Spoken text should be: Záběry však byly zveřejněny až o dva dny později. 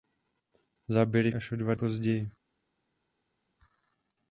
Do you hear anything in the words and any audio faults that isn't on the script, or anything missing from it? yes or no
yes